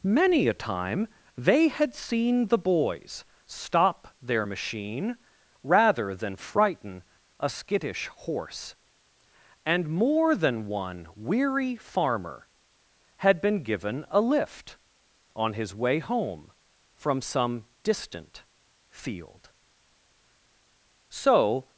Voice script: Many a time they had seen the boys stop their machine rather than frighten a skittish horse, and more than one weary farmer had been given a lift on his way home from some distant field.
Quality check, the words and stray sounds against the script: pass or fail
fail